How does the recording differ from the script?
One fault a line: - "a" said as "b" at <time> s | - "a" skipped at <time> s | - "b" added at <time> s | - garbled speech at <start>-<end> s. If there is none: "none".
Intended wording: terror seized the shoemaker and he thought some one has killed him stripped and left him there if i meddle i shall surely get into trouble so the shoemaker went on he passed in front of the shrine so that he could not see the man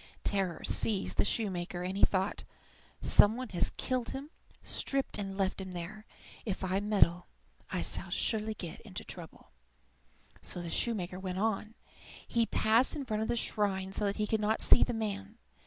none